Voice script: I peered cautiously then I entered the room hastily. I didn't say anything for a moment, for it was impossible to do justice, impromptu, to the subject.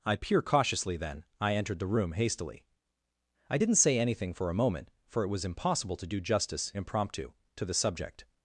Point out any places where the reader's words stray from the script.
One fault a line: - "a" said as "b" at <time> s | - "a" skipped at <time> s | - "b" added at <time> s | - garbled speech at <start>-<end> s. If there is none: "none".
- "peered" said as "peer" at 0.1 s